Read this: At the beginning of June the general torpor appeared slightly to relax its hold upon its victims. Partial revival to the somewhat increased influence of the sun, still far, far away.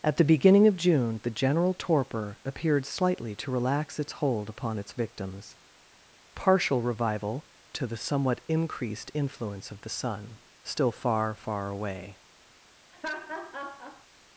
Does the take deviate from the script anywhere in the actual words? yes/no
no